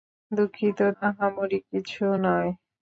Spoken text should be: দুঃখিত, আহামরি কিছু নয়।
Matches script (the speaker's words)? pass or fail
pass